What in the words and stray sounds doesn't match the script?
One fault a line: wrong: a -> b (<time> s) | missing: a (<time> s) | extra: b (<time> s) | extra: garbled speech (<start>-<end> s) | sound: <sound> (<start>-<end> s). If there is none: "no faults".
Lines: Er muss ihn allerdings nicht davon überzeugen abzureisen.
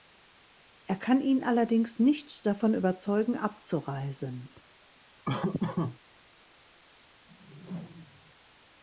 wrong: muss -> kann (0.9 s)
sound: laugh (5.2-6.0 s)
sound: whoosh (7.3-8.3 s)